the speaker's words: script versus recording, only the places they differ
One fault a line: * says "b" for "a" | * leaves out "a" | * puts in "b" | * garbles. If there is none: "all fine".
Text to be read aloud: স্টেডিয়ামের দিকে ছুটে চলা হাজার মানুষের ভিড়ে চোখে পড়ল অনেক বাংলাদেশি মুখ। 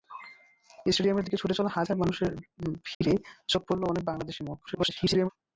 * garbles